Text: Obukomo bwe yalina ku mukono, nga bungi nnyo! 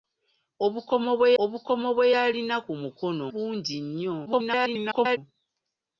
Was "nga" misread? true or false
true